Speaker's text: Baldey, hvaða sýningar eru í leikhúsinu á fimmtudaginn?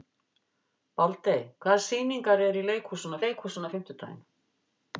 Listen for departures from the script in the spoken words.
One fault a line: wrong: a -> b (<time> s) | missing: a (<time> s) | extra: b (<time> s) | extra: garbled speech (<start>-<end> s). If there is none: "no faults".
extra: leikhúsinu (3.3 s)